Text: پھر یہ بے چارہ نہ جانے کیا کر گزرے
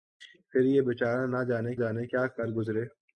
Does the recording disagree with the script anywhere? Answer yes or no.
yes